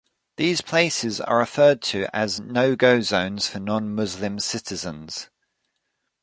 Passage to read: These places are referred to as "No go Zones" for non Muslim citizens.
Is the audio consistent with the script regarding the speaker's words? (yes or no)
yes